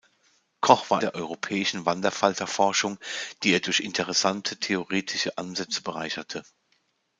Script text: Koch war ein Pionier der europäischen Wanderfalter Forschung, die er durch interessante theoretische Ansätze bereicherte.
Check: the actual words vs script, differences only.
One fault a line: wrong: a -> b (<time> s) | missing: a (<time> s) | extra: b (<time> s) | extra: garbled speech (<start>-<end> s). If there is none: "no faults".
missing: ein Pionier (1.0 s)